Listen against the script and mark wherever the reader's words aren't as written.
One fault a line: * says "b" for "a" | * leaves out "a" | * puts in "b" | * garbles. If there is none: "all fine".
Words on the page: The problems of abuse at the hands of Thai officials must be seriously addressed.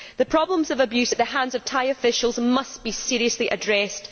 all fine